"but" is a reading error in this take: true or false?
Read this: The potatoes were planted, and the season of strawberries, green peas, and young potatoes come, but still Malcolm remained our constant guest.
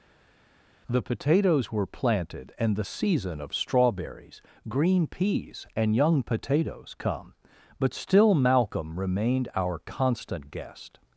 false